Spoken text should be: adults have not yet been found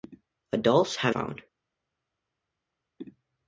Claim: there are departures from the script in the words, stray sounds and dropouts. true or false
true